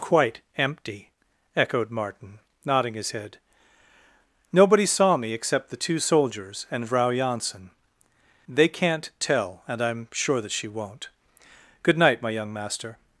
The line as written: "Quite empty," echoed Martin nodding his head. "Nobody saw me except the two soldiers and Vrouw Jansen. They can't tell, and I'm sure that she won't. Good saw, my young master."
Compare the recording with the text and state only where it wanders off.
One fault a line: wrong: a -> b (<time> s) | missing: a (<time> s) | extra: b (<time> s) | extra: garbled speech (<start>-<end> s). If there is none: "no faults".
wrong: saw -> night (12.0 s)